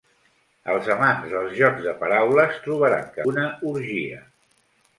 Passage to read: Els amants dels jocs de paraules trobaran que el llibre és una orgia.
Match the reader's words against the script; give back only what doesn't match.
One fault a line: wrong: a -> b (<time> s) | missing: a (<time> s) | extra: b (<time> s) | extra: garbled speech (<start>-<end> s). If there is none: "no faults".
missing: el llibre és (3.2 s)